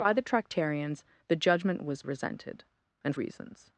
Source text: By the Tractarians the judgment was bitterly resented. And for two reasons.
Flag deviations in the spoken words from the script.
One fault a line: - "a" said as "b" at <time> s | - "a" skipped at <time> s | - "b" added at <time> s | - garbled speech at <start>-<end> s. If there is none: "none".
- "bitterly" skipped at 2.0 s
- "for two" skipped at 3.1 s